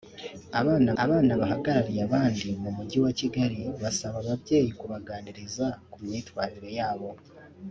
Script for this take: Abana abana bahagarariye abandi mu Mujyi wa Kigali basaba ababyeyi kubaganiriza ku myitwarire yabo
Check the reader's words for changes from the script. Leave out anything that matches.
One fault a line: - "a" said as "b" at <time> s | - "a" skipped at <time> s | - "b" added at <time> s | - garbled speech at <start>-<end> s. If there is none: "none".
none